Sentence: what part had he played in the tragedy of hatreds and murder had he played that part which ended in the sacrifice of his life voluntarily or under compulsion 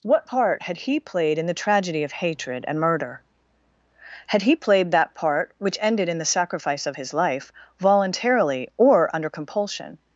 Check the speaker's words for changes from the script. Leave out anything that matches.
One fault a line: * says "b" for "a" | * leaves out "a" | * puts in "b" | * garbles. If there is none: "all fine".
* says "hatred" for "hatreds"